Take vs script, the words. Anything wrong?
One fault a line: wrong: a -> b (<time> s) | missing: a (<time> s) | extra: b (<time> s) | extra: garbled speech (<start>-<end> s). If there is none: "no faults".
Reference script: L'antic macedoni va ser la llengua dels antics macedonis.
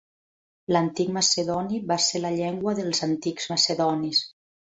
no faults